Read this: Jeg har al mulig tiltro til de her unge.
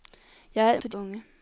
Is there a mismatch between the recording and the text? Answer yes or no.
yes